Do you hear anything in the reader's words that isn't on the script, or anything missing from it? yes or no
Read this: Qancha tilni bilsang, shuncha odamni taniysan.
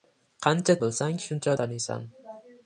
yes